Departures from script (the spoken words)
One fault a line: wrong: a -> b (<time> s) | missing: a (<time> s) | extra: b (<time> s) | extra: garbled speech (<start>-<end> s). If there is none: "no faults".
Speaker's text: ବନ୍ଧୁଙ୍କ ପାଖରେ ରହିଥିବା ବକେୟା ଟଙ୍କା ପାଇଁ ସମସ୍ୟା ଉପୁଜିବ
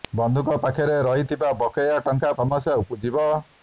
missing: ପାଇଁ (2.3 s)